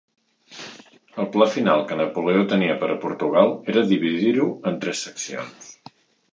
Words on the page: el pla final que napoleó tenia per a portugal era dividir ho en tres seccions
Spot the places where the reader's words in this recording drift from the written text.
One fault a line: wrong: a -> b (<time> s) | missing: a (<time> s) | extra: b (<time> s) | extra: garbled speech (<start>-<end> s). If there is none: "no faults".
no faults